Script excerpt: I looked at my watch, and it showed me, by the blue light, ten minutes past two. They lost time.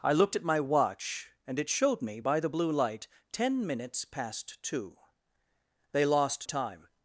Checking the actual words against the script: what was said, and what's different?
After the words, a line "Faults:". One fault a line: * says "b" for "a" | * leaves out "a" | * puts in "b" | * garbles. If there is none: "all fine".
I looked at my watch, and it showed me, by the blue light, ten minutes past two. They lost time.
Faults:
all fine